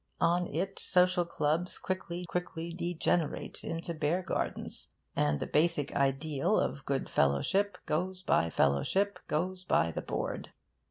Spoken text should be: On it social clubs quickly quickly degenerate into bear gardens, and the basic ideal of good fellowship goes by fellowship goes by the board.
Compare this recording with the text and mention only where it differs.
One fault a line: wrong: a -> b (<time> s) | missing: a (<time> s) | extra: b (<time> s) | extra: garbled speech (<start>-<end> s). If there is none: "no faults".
no faults